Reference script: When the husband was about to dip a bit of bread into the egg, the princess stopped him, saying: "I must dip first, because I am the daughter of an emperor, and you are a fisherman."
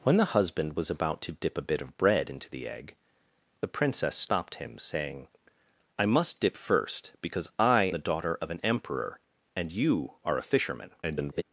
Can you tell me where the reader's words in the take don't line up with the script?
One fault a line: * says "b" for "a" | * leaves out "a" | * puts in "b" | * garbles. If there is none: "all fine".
* leaves out "am"
* garbles